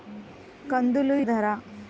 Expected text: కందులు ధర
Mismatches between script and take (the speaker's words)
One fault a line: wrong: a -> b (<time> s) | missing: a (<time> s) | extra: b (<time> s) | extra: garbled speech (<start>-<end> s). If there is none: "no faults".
no faults